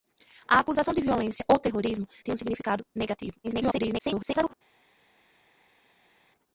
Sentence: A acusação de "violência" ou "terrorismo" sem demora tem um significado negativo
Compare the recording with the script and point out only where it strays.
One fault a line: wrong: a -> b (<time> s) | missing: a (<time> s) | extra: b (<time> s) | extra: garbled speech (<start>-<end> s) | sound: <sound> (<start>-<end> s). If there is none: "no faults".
missing: sem demora (2.1 s)
extra: garbled speech (3.4-4.5 s)